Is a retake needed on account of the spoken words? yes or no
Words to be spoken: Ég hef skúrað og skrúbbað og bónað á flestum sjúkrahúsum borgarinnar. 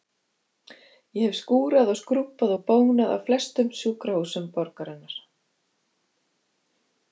no